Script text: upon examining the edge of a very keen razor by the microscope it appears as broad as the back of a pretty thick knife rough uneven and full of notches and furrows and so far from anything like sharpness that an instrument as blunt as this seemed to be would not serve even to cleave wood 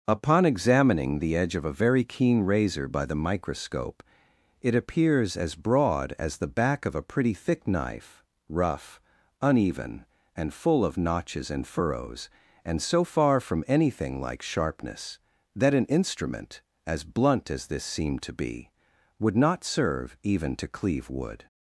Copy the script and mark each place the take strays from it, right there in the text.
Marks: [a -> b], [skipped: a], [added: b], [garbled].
upon examining the edge of a very keen razor by the microscope it appears as broad as the back of a pretty thick knife rough uneven and full of notches and furrows and so far from anything like sharpness that an instrument as blunt as this seemed to be would not serve even to cleave wood